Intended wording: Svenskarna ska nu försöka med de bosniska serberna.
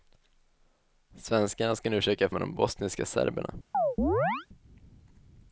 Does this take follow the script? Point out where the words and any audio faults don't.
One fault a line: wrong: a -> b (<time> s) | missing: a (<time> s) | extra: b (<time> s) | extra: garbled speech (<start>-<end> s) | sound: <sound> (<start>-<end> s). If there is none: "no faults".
sound: chirp (3.7-4.5 s)